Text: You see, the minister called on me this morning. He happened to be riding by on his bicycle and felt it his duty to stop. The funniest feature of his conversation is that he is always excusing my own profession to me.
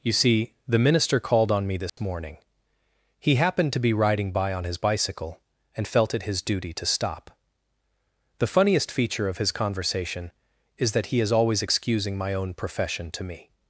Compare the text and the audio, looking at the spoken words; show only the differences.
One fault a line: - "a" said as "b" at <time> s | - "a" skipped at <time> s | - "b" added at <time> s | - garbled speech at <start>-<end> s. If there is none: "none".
none